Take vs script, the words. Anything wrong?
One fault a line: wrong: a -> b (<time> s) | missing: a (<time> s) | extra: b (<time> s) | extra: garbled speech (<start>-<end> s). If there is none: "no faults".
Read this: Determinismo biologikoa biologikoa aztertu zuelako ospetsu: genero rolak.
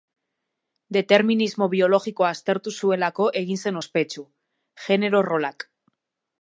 missing: biologikoa (2.3 s)
extra: egin zen (3.4 s)